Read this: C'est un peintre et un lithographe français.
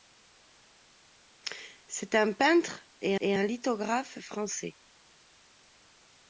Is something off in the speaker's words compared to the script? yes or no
yes